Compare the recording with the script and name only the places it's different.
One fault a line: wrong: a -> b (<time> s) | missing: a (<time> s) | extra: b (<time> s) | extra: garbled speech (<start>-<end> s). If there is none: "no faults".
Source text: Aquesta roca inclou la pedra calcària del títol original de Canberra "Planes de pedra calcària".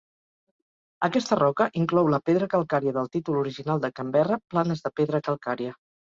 no faults